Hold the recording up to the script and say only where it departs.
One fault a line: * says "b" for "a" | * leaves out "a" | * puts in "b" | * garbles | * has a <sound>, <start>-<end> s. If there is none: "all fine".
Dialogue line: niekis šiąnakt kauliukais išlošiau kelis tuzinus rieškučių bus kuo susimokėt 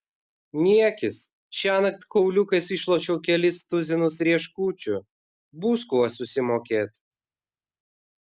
all fine